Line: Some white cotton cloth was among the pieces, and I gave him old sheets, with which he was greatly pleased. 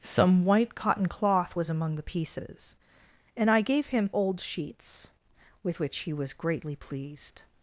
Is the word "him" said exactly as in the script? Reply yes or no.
yes